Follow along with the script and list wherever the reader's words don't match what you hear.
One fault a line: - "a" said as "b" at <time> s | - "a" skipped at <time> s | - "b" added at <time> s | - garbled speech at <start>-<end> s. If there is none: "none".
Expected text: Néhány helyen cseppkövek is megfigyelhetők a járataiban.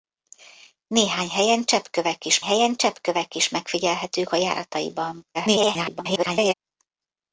- "helyen cseppkövek is" added at 2.4 s
- garbled speech at 5.3-6.5 s